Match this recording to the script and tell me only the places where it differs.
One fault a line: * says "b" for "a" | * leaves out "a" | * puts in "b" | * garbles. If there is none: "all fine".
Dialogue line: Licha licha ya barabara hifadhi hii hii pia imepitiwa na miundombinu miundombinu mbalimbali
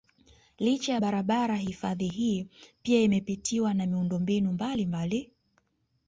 * leaves out "licha"
* leaves out "hii"
* leaves out "miundombinu"